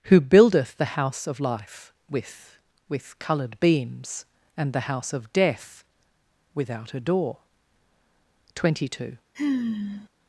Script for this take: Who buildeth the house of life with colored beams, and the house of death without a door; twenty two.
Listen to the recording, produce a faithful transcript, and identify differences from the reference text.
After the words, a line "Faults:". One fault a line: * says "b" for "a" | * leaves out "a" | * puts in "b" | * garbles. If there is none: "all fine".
Who buildeth the house of life with with colored beams, and the house of death without a door; twenty two.
Faults:
* puts in "with"